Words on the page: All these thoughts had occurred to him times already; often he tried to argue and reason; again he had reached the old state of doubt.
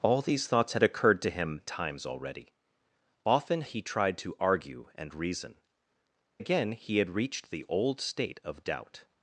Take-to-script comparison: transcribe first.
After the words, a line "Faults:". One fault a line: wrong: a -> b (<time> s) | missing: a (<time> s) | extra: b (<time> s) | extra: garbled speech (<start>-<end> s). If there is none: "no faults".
All these thoughts had occurred to him times already; often he tried to argue and reason; again he had reached the old state of doubt.
Faults:
no faults